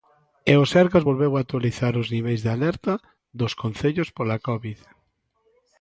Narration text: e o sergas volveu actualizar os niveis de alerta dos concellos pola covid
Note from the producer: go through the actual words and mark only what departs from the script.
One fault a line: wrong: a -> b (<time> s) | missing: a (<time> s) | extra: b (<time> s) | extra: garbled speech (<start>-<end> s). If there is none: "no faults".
no faults